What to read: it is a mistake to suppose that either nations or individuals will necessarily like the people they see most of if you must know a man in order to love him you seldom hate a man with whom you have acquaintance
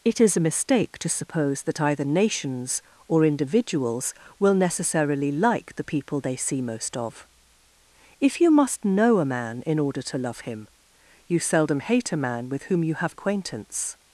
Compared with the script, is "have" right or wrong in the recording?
right